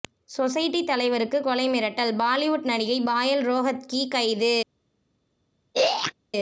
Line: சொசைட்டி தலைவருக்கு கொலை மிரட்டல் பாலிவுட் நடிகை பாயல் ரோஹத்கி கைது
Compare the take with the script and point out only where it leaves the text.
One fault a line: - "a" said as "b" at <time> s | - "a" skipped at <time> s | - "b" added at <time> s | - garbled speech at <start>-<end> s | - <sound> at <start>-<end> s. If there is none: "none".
- throat clearing at 5.7-6.1 s